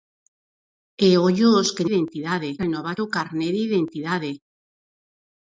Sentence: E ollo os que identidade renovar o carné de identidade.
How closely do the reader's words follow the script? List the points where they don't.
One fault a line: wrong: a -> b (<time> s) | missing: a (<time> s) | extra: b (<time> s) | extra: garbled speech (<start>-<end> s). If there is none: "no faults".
no faults